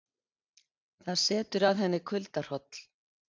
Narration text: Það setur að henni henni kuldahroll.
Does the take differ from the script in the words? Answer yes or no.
yes